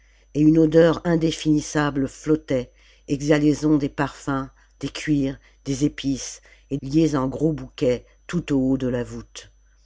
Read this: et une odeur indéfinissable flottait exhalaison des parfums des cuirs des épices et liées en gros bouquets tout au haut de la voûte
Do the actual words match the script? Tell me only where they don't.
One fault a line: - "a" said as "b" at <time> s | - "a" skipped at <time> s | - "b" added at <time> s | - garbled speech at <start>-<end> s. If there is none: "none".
none